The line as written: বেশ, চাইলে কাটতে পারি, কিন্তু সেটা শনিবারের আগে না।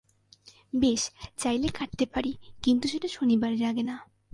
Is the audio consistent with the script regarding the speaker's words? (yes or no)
yes